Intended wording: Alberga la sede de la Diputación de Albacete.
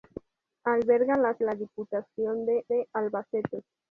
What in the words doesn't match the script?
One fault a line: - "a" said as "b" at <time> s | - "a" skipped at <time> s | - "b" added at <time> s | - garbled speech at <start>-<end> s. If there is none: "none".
- "sede de" skipped at 1.4 s
- "de" added at 2.7 s